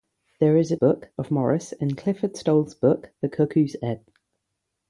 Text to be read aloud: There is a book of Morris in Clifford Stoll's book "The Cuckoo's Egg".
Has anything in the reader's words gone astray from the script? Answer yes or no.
no